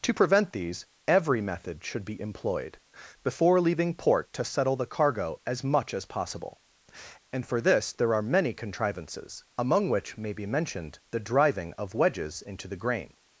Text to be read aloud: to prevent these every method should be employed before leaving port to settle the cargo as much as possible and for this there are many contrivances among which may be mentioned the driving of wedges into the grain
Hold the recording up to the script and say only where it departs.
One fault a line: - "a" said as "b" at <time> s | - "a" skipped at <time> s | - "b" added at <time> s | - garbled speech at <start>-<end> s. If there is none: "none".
none